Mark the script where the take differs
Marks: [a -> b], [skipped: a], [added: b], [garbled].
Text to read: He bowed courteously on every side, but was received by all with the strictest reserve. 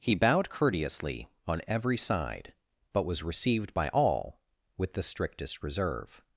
He bowed courteously on every side, but was received by all with the strictest reserve.